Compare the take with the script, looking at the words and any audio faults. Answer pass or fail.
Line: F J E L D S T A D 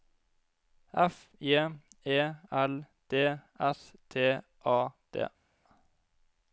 pass